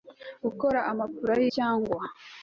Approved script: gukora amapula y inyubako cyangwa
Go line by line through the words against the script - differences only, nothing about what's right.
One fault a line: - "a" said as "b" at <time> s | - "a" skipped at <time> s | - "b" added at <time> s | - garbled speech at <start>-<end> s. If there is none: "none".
- "inyubako" skipped at 1.4 s